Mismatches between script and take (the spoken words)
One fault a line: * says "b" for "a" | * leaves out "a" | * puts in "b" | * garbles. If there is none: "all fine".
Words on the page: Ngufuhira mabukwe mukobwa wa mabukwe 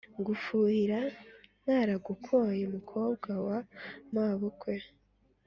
* says "ntaragukoye" for "mabukwe"